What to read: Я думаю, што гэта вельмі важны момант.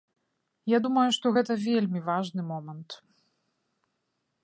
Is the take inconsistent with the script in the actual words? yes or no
no